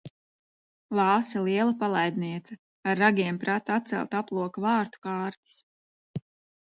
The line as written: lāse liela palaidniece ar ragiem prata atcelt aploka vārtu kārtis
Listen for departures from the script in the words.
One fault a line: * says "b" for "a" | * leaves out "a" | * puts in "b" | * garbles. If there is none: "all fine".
all fine